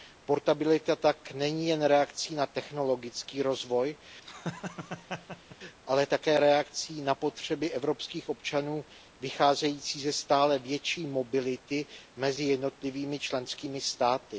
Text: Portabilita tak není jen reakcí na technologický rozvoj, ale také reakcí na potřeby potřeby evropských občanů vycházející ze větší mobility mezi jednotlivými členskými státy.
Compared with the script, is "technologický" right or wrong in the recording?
right